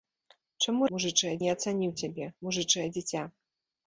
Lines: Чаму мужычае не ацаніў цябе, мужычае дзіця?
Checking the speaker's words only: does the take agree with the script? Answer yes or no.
yes